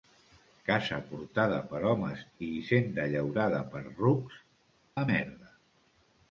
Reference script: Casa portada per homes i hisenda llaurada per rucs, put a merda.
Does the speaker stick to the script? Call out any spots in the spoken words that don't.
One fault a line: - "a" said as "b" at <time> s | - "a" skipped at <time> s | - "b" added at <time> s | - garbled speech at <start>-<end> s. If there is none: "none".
- "put" skipped at 4.4 s